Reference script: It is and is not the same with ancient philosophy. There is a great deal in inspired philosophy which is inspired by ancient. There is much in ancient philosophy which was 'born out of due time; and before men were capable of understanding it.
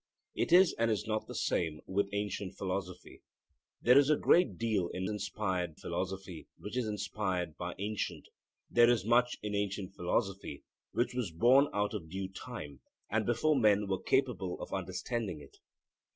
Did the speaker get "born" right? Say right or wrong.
right